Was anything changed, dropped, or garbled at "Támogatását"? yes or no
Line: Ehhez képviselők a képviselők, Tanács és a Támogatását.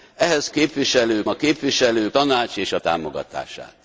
no